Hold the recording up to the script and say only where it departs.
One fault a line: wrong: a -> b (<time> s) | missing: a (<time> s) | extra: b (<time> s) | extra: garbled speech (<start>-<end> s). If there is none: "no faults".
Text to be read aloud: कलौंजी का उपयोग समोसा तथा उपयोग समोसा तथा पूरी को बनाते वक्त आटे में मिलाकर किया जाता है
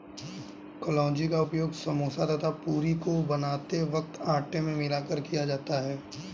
missing: उपयोग समोसा तथा (2.5 s)